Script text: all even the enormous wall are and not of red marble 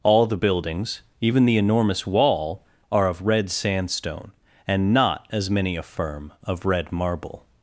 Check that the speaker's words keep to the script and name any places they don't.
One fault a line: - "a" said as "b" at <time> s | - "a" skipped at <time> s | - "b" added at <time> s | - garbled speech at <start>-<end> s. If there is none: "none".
- "the buildings" added at 0.2 s
- "of red sandstone" added at 3.1 s
- "as many affirm" added at 5.3 s